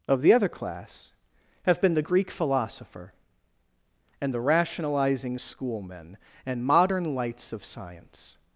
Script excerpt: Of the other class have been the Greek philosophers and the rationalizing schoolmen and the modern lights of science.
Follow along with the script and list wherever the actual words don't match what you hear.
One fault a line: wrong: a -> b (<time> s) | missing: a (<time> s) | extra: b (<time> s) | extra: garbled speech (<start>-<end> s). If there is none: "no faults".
wrong: philosophers -> philosopher (2.3 s)
missing: the (6.6 s)